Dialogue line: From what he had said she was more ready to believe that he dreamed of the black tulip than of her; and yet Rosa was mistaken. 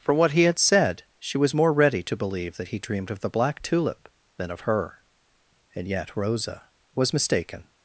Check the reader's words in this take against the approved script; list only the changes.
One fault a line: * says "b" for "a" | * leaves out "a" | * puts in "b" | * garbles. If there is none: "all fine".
all fine